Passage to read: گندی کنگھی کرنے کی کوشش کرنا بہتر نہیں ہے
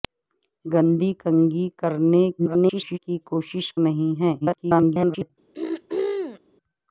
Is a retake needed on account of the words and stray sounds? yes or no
yes